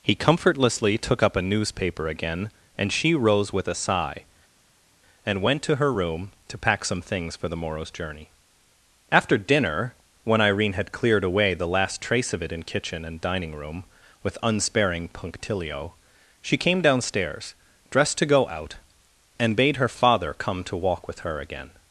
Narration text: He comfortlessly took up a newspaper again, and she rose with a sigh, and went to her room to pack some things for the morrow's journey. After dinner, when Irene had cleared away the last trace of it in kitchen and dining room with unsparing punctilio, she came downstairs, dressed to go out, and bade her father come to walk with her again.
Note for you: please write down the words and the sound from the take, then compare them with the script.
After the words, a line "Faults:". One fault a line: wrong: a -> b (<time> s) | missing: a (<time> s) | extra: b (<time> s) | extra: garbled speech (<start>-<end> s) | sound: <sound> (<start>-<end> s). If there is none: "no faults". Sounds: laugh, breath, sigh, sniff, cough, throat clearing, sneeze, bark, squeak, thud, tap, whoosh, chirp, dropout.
He comfortlessly took up a newspaper again, and she rose with a sigh, and went to her room to pack some things for the morrow's journey. After dinner, when Irene had cleared away the last trace of it in kitchen and dining room with unsparing punctilio, she came downstairs, dressed to go out, and bade her father come to walk with her again.
Faults:
no faults